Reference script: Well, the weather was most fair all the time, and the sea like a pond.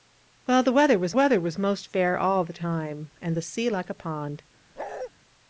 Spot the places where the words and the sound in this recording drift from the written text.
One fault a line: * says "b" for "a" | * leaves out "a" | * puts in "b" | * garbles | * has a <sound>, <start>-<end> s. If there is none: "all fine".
* puts in "weather was"
* has a bark, 4.8-5.1 s